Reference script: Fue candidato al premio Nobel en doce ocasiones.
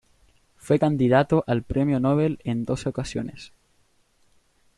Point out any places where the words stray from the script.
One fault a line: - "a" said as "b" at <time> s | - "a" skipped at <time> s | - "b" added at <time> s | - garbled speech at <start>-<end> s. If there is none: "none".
none